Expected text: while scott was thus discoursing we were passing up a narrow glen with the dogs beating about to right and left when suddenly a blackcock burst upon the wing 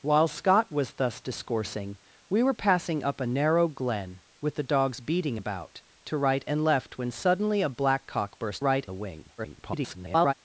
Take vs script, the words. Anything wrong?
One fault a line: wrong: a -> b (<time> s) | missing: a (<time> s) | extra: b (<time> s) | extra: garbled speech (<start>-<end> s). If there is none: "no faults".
wrong: upon -> right (8.6 s)
extra: garbled speech (9.4-10.3 s)